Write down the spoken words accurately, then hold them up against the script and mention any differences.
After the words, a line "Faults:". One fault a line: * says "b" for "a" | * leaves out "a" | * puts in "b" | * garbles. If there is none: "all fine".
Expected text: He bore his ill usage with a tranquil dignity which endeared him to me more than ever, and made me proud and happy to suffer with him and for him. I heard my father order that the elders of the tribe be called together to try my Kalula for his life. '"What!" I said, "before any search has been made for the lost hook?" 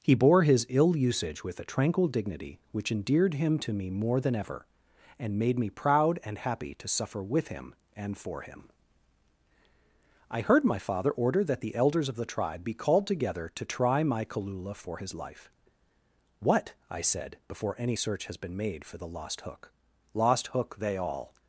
He bore his ill usage with a tranquil dignity which endeared him to me more than ever, and made me proud and happy to suffer with him and for him. I heard my father order that the elders of the tribe be called together to try my Kalula for his life. '"What!" I said, "before any search has been made for the lost hook?" '"Lost hook!" they all
Faults:
* puts in "Lost hook they all"